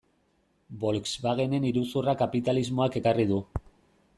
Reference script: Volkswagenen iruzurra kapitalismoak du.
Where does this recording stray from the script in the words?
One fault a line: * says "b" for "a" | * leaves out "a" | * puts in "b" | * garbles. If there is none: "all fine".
* puts in "ekarri"